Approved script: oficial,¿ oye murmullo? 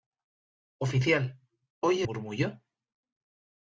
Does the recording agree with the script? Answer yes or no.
yes